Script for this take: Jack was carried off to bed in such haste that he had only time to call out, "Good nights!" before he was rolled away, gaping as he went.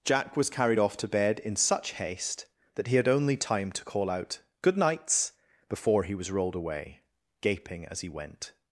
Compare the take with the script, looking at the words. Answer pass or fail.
pass